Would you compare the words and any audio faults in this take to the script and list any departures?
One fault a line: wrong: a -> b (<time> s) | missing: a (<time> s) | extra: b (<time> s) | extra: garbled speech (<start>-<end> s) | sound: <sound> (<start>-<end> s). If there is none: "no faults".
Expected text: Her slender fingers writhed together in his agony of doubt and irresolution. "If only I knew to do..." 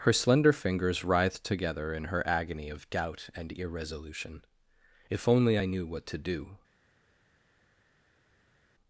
wrong: his -> her (2.0 s)
extra: what (5.9 s)